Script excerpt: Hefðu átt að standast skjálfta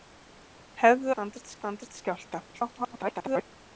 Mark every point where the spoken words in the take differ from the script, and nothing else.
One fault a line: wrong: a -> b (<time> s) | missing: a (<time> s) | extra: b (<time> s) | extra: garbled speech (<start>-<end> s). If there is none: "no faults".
wrong: átt -> standast (1.1 s)
extra: garbled speech (2.5-3.4 s)